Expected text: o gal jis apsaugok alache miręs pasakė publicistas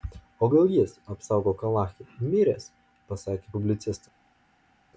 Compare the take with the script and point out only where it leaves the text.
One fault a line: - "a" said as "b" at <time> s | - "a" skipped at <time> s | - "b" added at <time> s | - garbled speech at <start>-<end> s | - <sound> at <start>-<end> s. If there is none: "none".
none